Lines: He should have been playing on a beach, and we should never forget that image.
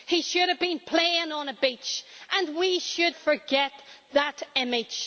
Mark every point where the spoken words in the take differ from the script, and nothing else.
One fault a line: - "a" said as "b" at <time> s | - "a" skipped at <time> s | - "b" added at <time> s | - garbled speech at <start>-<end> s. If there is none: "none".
- "never" skipped at 3.1 s